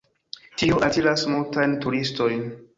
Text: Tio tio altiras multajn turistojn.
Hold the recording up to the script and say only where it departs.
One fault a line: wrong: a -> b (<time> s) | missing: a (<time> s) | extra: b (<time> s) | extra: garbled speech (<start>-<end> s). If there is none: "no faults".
missing: tio (0.8 s)